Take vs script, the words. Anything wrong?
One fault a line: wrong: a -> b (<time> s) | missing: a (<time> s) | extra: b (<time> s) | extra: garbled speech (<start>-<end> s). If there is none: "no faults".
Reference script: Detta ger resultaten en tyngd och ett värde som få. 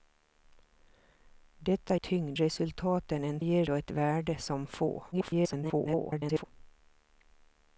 wrong: ger -> tyngd (2.0 s)
wrong: tyngd -> ger (3.4 s)
extra: garbled speech (5.1-6.4 s)